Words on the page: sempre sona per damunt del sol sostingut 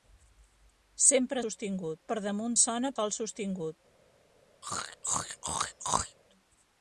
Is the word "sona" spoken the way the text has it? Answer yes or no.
no